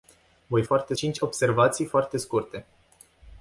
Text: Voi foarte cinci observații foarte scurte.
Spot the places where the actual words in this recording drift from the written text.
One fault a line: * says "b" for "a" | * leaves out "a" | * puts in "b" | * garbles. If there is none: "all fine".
all fine